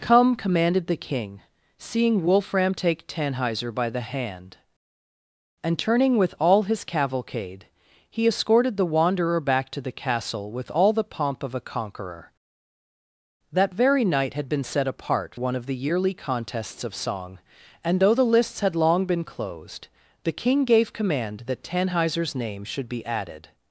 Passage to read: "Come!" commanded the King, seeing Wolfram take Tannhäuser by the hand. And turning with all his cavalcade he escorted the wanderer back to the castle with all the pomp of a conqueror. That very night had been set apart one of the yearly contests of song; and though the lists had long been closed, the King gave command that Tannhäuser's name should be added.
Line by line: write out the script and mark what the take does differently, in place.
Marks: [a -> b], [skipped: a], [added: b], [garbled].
"Come!" commanded the King, seeing Wolfram take Tannhäuser by the hand. And turning with all his cavalcade he escorted the wanderer back to the castle with all the pomp of a conqueror. That very night had been set apart one of the yearly contests of song; and though the lists had long been closed, the King gave command that Tannhäuser's name should be added.